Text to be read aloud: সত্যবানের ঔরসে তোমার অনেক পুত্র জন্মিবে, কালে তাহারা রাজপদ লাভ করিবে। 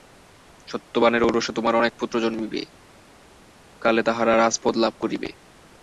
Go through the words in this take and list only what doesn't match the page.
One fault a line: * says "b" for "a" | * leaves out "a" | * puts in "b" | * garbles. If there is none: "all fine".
all fine